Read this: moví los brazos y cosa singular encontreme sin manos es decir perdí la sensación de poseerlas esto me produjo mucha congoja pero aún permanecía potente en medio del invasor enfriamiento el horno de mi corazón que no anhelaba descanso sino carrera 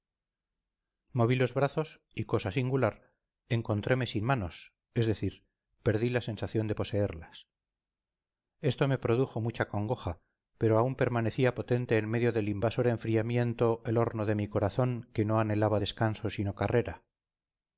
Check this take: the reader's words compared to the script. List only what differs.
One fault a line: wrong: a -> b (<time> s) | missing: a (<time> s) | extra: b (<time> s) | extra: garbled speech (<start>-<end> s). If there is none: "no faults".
no faults